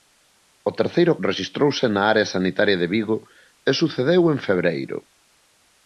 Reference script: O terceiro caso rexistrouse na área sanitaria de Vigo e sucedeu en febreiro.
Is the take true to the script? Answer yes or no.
no